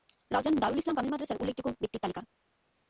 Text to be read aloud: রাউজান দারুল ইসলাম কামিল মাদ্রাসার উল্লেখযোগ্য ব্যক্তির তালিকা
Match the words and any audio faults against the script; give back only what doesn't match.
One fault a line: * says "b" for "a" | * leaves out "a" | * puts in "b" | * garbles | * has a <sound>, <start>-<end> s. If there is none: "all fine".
all fine